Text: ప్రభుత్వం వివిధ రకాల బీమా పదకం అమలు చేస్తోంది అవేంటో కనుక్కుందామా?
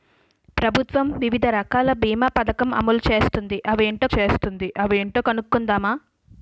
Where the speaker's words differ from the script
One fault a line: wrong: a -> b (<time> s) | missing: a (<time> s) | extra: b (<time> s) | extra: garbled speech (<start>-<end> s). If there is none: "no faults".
extra: చేస్తోంది అవేంటో (4.2 s)